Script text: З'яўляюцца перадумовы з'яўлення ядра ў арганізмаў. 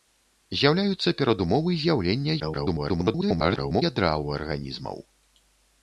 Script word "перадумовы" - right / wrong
right